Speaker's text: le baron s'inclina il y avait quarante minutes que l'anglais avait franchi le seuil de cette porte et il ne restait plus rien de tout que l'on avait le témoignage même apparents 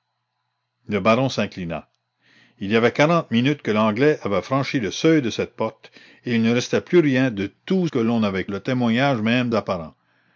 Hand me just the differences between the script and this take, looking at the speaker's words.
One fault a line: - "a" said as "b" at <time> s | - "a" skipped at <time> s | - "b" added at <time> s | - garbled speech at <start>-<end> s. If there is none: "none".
none